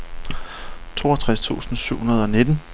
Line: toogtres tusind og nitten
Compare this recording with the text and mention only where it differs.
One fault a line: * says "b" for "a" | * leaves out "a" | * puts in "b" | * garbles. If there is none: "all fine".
* puts in "syv hundrede"